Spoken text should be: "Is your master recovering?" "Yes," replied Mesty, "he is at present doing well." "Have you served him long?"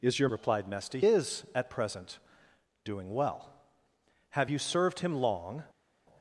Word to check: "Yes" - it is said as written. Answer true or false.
false